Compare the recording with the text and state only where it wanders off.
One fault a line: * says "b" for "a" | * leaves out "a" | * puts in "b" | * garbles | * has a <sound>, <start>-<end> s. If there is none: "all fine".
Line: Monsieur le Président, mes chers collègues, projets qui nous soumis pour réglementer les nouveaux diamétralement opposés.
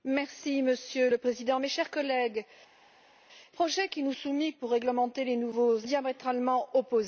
all fine